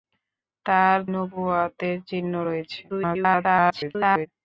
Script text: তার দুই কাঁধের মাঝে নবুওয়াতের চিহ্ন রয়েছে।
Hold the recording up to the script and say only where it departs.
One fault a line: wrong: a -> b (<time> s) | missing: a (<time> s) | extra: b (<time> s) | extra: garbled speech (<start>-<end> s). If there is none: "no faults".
missing: দুই কাঁধের মাঝে (1.0 s)
extra: garbled speech (2.9-4.3 s)